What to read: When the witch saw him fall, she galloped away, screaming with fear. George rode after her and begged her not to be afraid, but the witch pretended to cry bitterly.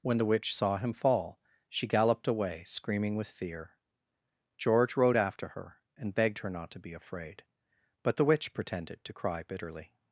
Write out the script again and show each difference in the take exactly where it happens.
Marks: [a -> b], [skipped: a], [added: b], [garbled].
When the witch saw him fall, she galloped away, screaming with fear. George rode after her and begged her not to be afraid, but the witch pretended to cry bitterly.